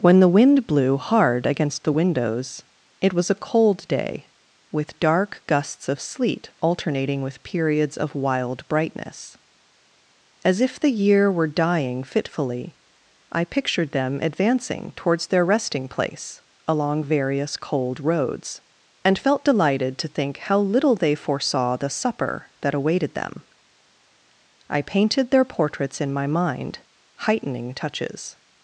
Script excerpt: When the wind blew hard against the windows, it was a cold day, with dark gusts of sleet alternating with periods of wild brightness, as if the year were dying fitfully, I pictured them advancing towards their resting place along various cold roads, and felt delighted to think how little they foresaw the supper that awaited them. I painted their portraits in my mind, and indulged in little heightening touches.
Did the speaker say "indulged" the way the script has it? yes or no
no